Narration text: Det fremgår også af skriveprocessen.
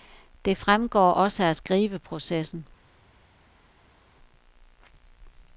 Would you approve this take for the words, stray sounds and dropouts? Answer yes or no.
yes